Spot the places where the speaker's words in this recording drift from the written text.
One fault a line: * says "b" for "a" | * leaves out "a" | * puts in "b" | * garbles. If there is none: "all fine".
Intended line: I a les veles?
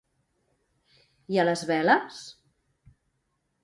all fine